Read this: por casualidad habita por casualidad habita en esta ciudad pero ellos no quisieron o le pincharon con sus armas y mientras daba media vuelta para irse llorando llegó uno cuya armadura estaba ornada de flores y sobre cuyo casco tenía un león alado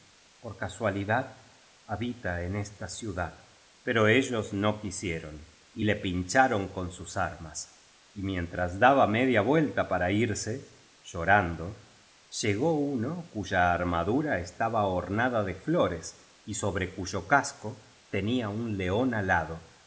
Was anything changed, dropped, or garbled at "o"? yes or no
yes